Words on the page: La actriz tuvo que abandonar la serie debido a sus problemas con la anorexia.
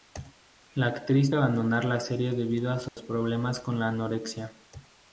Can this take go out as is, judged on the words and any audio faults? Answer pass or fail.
fail